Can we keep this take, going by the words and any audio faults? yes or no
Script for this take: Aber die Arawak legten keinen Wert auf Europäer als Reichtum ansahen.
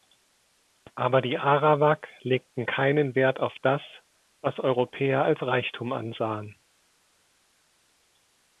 no